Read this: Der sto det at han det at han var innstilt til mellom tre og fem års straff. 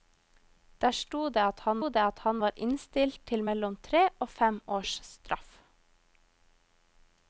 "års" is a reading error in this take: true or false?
false